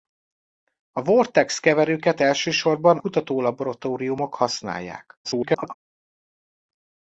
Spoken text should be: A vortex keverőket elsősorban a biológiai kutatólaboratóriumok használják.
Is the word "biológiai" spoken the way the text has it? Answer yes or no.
no